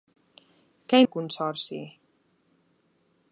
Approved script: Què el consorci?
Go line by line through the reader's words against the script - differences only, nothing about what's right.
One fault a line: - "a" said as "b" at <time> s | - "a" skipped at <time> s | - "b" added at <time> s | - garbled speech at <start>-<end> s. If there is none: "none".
none